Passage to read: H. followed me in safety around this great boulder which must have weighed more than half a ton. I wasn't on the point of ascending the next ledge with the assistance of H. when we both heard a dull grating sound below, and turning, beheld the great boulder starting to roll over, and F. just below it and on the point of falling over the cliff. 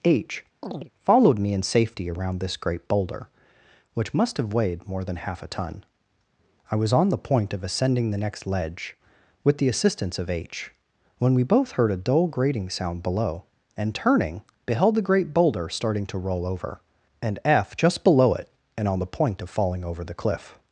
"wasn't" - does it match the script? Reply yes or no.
no